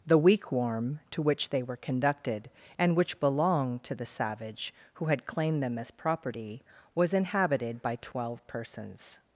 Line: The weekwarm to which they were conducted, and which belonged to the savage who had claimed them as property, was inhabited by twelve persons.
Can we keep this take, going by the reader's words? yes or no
yes